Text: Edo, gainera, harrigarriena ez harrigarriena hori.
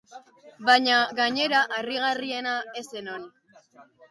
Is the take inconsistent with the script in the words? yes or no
yes